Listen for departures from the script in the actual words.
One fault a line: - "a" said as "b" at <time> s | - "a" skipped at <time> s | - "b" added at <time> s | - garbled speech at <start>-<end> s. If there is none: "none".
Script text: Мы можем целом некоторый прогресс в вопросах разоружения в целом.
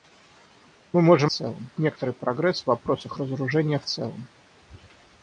none